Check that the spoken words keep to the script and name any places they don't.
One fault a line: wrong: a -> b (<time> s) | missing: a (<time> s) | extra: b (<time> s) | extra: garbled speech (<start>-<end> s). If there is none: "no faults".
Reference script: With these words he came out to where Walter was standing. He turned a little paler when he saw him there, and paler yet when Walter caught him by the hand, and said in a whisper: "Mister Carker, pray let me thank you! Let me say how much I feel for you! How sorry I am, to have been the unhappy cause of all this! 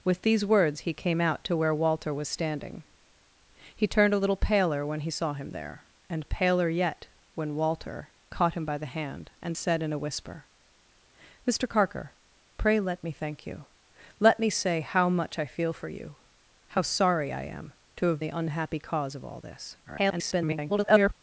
missing: been (18.2 s)
extra: garbled speech (19.9-21.1 s)